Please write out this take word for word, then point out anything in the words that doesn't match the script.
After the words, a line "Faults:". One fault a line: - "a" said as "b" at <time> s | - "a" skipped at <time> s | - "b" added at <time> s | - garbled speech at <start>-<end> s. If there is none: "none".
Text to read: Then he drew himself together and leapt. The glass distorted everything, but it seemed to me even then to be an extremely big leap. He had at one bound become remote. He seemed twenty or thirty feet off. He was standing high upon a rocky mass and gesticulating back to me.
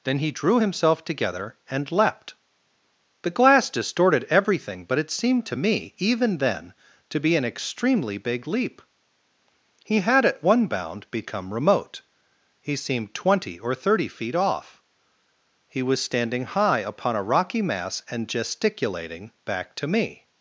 Then he drew himself together and leapt. The glass distorted everything, but it seemed to me even then to be an extremely big leap. He had at one bound become remote. He seemed twenty or thirty feet off. He was standing high upon a rocky mass and gesticulating back to me.
Faults:
none